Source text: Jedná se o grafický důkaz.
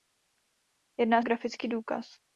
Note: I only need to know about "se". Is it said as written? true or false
false